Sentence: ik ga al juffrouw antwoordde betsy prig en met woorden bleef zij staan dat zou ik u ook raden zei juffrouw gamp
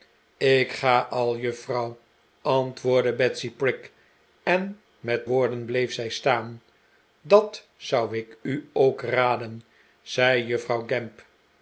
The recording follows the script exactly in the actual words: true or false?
true